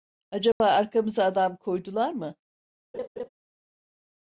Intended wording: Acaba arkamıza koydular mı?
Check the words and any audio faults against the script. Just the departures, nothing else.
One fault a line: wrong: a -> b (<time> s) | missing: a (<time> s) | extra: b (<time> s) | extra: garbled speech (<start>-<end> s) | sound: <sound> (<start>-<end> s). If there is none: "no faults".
sound: dropout (0.5-0.6 s)
extra: adam (1.2 s)
sound: laugh (2.9-3.3 s)